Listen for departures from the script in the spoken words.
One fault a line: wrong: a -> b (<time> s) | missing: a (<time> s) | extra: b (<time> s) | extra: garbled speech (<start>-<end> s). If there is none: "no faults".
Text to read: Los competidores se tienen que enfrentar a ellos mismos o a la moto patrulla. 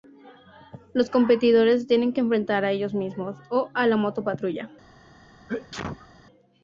no faults